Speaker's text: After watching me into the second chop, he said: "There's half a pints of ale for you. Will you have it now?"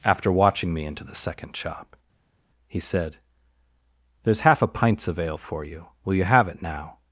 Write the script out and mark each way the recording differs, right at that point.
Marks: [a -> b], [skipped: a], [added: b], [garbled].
After watching me into the second chop, he said: "There's half a pints of ale for you. Will you have it now?"